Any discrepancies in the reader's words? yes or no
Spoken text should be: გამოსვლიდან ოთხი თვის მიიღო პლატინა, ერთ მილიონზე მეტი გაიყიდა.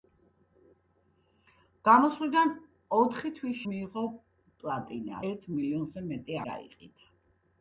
no